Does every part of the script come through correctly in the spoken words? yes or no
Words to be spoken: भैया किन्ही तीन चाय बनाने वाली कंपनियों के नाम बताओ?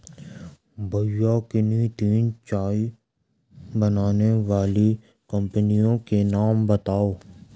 yes